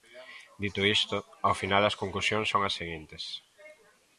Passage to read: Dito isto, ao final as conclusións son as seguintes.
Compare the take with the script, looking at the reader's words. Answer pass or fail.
pass